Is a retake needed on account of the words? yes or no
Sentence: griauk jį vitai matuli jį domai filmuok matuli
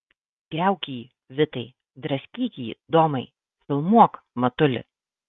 yes